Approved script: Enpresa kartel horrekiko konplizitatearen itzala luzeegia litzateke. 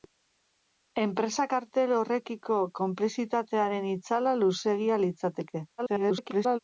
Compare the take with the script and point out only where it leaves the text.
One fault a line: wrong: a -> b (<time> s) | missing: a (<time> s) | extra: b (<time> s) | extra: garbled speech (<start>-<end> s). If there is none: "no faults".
extra: garbled speech (5.8-6.6 s)